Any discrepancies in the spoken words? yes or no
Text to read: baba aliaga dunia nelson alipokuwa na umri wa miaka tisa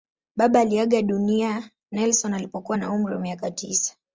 no